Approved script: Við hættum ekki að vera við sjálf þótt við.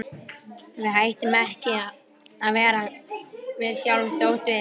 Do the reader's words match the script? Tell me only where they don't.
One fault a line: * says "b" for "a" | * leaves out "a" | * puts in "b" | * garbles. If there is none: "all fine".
all fine